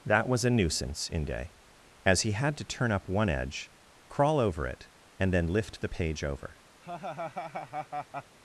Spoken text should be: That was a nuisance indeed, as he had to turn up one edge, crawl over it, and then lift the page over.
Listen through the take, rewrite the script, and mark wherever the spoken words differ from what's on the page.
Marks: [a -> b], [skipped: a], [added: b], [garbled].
That was a nuisance [indeed, -> inde] as he had to turn up one edge, crawl over it, and then lift the page over.